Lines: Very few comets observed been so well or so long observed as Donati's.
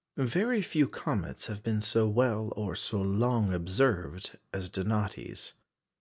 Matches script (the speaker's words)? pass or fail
fail